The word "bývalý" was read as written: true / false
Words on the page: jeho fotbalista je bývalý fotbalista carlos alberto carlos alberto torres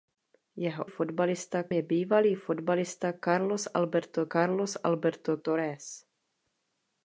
true